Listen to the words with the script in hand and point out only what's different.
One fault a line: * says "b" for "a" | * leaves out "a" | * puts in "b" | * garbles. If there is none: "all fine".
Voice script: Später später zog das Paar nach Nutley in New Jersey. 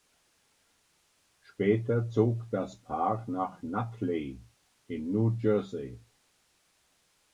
* leaves out "später"